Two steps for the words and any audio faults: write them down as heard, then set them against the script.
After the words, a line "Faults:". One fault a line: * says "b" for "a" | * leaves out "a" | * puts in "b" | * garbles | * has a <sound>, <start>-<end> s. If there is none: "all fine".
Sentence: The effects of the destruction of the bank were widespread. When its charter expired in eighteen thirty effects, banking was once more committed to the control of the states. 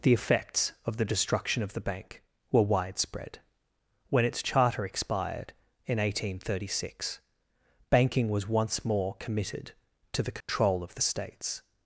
The effects of the destruction of the bank were widespread. When its charter expired in eighteen thirty six, banking was once more committed to the control of the states.
Faults:
* says "six" for "effects"
* has a dropout, 10.4-10.5 s